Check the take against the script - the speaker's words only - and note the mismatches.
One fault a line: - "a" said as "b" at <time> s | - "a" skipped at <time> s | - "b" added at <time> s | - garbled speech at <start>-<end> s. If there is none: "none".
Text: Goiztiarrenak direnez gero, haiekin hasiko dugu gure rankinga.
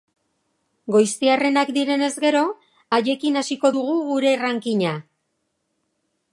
none